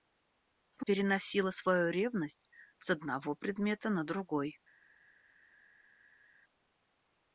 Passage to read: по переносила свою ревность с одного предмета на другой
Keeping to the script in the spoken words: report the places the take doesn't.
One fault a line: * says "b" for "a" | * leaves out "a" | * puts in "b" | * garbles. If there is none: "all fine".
all fine